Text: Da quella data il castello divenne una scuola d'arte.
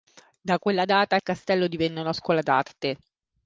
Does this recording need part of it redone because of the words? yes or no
no